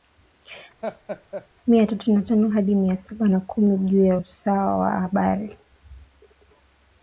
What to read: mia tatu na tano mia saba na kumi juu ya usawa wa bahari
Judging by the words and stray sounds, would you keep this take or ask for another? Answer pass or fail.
fail